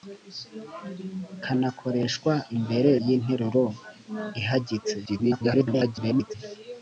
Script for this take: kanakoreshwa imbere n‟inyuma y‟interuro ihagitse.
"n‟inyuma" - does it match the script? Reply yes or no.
no